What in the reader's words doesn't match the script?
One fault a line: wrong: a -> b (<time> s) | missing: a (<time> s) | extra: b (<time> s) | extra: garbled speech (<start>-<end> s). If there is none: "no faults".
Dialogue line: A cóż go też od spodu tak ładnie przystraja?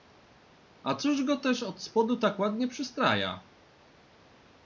no faults